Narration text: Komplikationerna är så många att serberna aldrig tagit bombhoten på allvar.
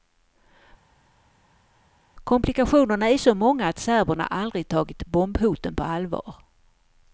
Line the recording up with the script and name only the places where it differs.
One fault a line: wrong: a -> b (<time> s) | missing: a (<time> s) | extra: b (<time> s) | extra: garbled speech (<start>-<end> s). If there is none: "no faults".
no faults